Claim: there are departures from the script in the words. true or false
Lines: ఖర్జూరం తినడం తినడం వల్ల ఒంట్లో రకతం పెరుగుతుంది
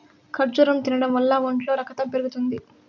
true